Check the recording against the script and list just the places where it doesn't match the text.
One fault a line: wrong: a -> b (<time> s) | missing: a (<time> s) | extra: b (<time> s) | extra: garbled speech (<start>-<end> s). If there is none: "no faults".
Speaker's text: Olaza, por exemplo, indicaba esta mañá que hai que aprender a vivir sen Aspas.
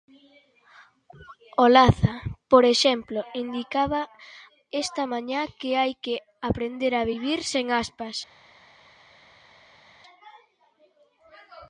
no faults